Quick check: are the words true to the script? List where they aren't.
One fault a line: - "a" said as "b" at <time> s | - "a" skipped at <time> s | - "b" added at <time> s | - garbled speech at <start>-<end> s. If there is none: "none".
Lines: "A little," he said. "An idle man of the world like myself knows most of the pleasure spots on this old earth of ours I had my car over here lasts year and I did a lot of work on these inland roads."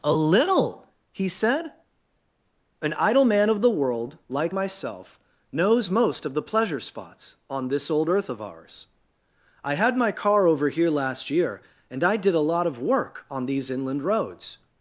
- "lasts" said as "last" at 10.9 s